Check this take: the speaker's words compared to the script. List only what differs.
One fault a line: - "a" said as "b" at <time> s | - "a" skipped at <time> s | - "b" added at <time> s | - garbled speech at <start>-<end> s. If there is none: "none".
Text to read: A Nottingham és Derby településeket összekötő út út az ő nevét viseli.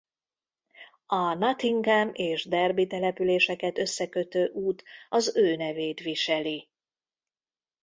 - "út" skipped at 4.8 s